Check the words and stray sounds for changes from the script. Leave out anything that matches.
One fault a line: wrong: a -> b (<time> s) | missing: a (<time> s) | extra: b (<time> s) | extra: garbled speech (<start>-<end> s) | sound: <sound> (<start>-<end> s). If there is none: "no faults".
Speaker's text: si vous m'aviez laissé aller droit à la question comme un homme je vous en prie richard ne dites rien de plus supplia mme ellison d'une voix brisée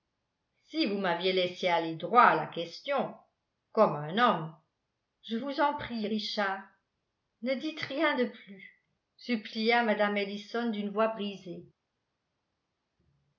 no faults